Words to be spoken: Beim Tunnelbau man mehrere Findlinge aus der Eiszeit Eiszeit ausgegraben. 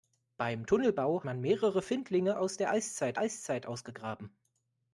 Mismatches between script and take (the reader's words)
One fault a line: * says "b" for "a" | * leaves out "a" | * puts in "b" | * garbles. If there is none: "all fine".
all fine